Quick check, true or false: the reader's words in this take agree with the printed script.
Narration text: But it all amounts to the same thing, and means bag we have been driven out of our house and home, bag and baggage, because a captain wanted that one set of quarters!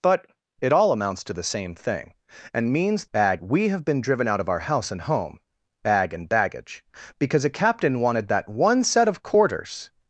true